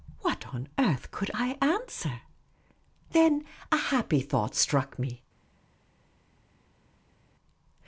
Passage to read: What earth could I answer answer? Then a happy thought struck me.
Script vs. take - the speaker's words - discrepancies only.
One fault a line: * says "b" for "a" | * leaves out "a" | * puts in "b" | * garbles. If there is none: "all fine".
* puts in "on"
* leaves out "answer"